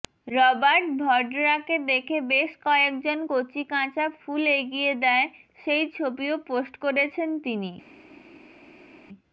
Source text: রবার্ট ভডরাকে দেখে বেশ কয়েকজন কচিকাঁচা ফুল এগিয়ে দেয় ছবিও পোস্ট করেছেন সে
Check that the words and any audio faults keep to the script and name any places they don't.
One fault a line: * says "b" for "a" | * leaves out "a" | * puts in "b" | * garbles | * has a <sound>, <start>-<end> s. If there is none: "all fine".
* puts in "সেই"
* says "তিনি" for "সে"